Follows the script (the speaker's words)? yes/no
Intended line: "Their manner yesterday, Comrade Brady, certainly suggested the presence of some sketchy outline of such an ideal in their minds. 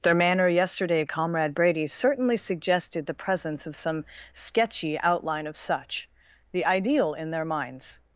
no